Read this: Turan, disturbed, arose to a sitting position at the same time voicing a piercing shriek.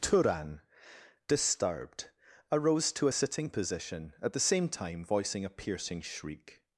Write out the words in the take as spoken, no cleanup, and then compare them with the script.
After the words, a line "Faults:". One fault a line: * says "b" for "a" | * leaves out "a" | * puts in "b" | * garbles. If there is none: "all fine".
Turan, disturbed, arose to a sitting position at the same time voicing a piercing shriek.
Faults:
all fine